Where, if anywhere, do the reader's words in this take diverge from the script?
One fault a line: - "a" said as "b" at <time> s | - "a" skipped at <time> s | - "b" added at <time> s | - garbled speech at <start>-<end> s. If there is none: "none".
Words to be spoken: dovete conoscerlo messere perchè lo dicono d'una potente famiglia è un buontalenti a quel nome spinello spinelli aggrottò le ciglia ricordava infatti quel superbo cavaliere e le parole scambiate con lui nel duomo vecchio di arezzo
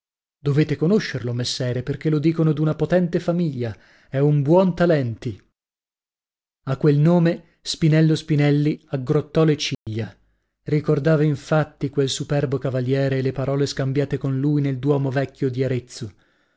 none